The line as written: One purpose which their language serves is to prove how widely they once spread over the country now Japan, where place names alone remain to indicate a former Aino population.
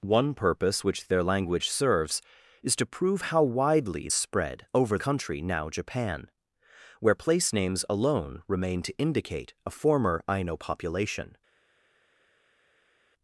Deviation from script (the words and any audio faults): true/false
true